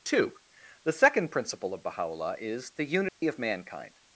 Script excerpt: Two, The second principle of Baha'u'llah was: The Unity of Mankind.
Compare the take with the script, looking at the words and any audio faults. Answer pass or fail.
fail